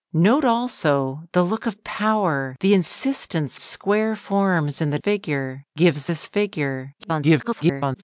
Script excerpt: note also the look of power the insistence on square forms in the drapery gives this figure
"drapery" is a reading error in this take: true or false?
true